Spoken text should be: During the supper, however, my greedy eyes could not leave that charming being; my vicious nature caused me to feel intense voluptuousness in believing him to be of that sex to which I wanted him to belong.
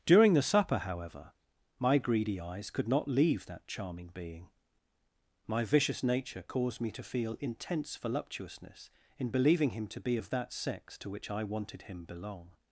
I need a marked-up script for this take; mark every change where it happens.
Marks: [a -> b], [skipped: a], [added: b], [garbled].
During the supper, however, my greedy eyes could not leave that charming being; my vicious nature caused me to feel intense voluptuousness in believing him to be of that sex to which I wanted him [skipped: to] belong.